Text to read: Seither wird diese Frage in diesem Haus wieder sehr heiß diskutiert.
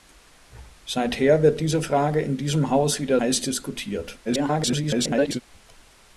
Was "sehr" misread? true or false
true